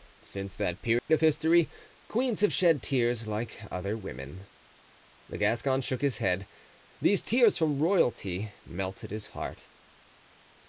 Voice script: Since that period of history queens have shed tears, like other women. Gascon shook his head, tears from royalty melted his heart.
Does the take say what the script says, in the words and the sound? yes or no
no